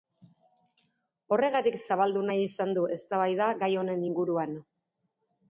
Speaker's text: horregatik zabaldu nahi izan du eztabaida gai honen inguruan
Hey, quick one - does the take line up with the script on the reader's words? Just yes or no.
yes